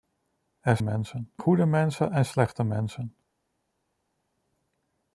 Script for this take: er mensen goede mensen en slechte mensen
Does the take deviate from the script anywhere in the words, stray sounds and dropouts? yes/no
no